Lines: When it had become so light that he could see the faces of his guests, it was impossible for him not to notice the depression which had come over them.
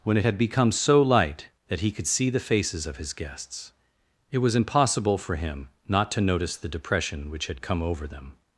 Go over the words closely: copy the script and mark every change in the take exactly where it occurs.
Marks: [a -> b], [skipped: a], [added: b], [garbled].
When it had become so light that he could see the faces of his guests, it was impossible for him not to notice the depression which had come over them.